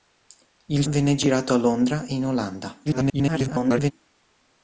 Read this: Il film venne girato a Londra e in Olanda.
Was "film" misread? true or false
true